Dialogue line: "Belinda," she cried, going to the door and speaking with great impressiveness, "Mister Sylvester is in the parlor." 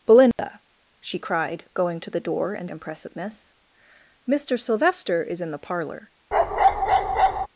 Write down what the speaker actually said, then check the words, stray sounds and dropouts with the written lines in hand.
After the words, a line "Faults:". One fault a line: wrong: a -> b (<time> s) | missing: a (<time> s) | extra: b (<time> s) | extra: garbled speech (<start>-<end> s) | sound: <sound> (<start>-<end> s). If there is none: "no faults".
"Belinda," she cried, going to the door and impressiveness, "Mister Sylvester is in the parlor."
Faults:
sound: dropout (0.3-0.4 s)
missing: speaking with great (2.7 s)
sound: bark (6.3-7.5 s)